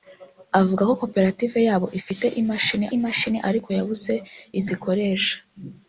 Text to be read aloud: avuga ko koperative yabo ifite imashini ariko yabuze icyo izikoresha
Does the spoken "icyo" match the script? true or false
false